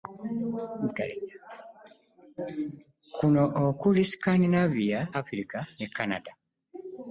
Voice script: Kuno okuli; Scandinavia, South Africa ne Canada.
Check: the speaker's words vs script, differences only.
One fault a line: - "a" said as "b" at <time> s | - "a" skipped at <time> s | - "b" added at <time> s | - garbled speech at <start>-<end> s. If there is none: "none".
- "South" skipped at 5.0 s